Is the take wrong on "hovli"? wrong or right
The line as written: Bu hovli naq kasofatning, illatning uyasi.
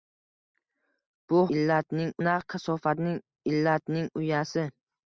wrong